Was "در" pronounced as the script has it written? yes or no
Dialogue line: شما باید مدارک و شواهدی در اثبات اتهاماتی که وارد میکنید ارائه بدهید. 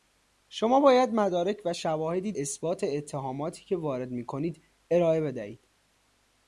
no